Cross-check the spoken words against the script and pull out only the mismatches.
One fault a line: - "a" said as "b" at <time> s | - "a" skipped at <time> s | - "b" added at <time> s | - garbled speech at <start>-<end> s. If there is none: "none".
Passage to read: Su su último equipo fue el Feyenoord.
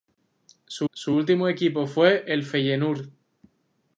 none